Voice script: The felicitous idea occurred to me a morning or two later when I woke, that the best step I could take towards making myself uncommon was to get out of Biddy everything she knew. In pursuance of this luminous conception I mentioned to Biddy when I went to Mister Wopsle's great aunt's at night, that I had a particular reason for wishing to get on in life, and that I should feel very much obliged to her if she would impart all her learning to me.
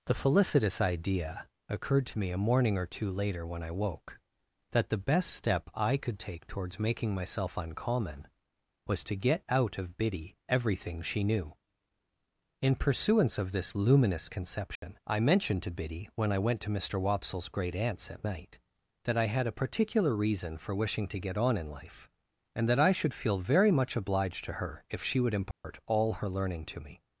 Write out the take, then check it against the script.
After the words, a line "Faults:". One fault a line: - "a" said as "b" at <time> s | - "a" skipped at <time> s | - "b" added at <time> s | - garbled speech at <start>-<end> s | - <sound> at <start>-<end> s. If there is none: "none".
The felicitous idea occurred to me a morning or two later when I woke, that the best step I could take towards making myself uncommon was to get out of Biddy everything she knew. In pursuance of this luminous conception I mentioned to Biddy when I went to Mister Wopsle's great aunt's at night, that I had a particular reason for wishing to get on in life, and that I should feel very much obliged to her if she would impart all her learning to me.
Faults:
- dropout at 14.8-14.8 s
- dropout at 25.5-25.6 s